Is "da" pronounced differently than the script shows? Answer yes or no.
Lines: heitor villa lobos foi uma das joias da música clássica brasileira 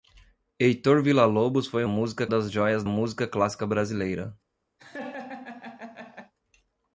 yes